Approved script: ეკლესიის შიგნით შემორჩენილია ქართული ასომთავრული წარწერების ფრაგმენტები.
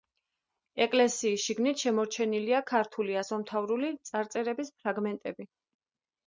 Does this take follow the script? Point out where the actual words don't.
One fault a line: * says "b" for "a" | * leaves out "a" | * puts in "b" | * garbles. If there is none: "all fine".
all fine